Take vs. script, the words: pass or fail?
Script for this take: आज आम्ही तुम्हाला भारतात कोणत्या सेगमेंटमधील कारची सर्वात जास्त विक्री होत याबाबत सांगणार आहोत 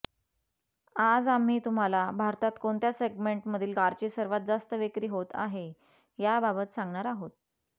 fail